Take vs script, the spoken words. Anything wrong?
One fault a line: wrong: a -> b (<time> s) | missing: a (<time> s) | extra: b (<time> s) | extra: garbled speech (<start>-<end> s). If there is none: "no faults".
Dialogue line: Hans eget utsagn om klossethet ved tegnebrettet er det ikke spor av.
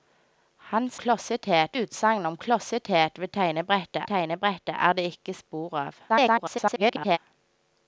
wrong: eget -> klossethet (0.9 s)
extra: tegnebrettet (4.0 s)
extra: garbled speech (6.1-7.2 s)